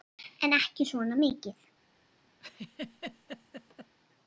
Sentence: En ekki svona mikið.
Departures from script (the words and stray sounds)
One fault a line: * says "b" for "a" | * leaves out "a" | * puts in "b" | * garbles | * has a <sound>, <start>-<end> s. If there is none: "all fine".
* has a laugh, 2.4-4.0 s